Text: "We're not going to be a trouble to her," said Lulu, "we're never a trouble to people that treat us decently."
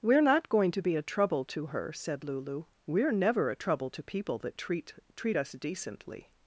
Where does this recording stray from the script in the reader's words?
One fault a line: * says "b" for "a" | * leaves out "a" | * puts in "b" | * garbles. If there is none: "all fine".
* puts in "treat"